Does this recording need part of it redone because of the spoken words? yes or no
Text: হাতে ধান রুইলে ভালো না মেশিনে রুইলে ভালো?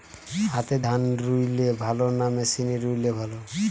no